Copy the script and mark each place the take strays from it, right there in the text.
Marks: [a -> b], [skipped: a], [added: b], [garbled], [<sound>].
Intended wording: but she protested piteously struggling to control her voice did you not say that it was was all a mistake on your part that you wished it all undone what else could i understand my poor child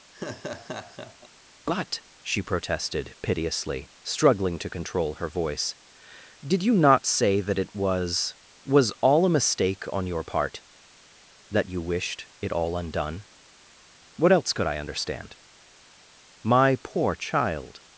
[laugh] but she protested piteously struggling to control her voice did you not say that it was was all a mistake on your part that you wished it all undone what else could i understand my poor child